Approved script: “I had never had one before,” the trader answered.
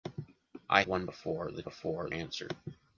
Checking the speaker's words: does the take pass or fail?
fail